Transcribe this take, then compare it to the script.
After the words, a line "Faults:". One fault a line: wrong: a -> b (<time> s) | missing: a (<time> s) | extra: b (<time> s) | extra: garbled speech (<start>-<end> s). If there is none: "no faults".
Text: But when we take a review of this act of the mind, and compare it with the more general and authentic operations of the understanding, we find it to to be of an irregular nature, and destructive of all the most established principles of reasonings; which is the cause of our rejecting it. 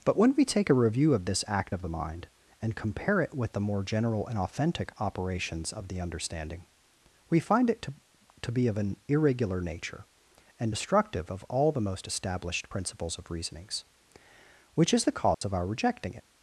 But when we take a review of this act of the mind, and compare it with the more general and authentic operations of the understanding, we find it to to be of an irregular nature, and destructive of all the most established principles of reasonings; which is the cause of our rejecting it.
Faults:
no faults